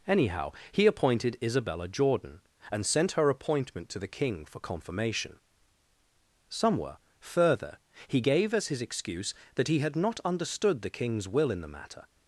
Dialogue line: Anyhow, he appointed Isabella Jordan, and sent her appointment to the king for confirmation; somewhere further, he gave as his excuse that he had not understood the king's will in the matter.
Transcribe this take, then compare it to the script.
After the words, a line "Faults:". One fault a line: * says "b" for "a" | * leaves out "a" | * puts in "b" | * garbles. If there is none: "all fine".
Anyhow, he appointed Isabella Jordan, and sent her appointment to the king for confirmation; somewhere further, he gave as his excuse that he had not understood the king's will in the matter.
Faults:
all fine